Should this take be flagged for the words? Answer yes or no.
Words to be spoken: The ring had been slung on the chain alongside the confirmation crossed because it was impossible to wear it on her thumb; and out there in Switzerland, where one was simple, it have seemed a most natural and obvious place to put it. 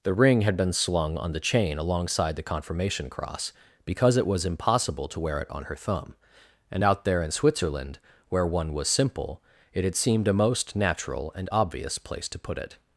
yes